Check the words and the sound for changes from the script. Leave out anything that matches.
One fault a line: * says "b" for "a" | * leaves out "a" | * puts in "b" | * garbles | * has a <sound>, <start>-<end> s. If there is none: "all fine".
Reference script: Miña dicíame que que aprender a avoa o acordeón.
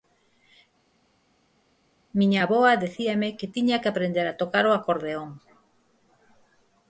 * puts in "avoa"
* puts in "tiña"
* says "tocar" for "avoa"